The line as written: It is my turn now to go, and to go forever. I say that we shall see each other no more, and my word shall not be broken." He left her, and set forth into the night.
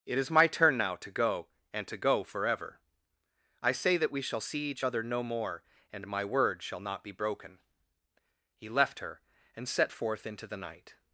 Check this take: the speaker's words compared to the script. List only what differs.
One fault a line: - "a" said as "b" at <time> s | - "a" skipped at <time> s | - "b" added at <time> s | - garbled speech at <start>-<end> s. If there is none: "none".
none